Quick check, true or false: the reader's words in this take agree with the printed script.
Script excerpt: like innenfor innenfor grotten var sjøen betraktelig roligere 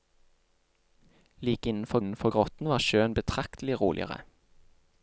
true